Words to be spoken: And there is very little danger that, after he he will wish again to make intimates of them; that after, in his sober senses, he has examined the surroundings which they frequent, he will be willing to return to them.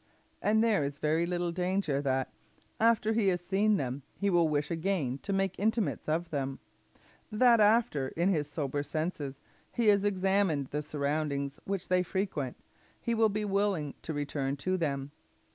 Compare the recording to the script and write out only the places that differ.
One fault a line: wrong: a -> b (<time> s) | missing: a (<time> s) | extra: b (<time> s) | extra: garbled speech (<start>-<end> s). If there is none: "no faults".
extra: has seen them (3.3 s)